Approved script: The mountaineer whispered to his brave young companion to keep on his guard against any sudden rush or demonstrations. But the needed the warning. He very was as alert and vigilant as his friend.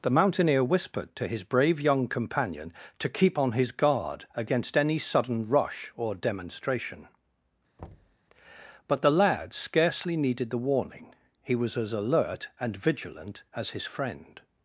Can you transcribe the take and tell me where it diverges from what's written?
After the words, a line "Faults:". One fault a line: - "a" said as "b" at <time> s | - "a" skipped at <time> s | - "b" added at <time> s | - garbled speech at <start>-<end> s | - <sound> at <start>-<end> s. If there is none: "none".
The mountaineer whispered to his brave young companion to keep on his guard against any sudden rush or demonstration. But the lad scarcely needed the warning. He was as alert and vigilant as his friend.
Faults:
- "demonstrations" said as "demonstration" at 6.2 s
- thud at 7.8-8.2 s
- "lad scarcely" added at 9.1 s
- "very" skipped at 11.5 s